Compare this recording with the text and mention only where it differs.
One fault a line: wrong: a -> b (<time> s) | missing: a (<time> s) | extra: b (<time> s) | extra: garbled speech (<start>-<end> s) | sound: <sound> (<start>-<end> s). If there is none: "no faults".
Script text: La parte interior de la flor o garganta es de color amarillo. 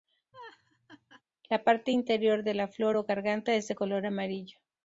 sound: laugh (0.3-1.2 s)